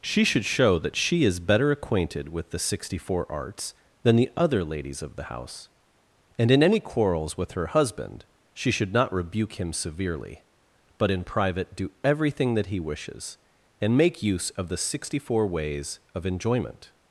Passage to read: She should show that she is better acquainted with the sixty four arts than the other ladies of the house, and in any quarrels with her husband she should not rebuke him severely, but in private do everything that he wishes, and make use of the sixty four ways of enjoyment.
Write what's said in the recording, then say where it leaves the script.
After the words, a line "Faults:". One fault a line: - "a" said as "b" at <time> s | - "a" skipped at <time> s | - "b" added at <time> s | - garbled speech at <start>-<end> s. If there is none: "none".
She should show that she is better acquainted with the sixty four arts than the other ladies of the house, and in any quarrels with her husband she should not rebuke him severely, but in private do everything that he wishes, and make use of the sixty four ways of enjoyment.
Faults:
none